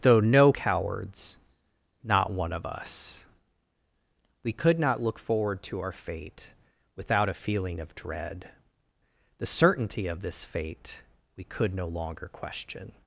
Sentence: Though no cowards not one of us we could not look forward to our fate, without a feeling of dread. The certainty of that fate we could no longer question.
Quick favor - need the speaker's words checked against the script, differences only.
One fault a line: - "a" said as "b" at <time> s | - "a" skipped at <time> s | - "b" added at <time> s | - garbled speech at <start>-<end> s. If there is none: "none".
- "that" said as "this" at 10.2 s